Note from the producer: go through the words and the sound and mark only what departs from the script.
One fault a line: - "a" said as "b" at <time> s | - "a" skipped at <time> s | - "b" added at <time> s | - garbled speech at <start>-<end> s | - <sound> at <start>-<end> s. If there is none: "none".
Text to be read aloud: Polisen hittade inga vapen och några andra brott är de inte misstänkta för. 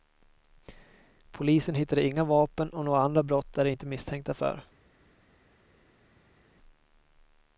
none